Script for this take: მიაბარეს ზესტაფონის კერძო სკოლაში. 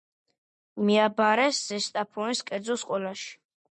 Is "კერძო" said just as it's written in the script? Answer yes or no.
yes